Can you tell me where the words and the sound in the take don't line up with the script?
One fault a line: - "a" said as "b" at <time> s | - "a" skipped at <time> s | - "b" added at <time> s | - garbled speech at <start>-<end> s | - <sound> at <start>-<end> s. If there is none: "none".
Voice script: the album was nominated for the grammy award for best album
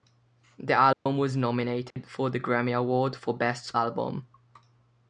- dropout at 0.9-1.1 s
- dropout at 1.9-2.0 s